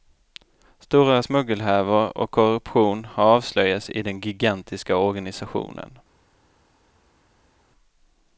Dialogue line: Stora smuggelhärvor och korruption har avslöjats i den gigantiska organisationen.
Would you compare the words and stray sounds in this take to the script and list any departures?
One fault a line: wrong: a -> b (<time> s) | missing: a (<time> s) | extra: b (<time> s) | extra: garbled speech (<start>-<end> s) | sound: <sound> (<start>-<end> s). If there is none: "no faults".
no faults